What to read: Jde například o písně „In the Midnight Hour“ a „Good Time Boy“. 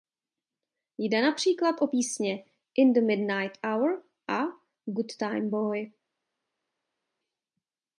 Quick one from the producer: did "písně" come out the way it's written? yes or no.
yes